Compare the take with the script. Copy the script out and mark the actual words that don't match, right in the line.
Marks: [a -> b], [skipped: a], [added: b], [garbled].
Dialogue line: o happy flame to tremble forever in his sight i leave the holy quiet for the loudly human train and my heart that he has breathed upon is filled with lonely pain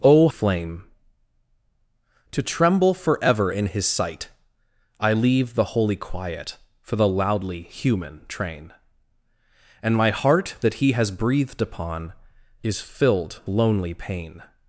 o [skipped: happy] flame to tremble forever in his sight i leave the holy quiet for the loudly human train and my heart that he has breathed upon is filled [skipped: with] lonely pain